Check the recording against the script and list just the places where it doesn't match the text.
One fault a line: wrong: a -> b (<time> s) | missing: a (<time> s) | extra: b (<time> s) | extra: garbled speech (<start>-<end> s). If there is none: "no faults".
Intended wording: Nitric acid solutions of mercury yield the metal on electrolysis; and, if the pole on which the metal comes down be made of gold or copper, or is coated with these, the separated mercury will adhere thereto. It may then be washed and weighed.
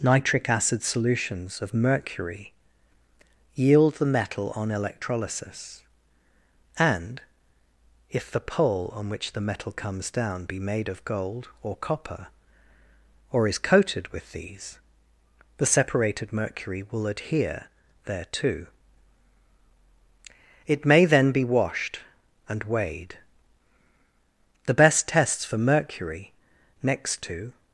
extra: The best tests for mercury next to (24.7 s)